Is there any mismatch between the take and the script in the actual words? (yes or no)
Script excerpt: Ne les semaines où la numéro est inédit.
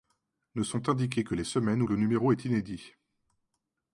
yes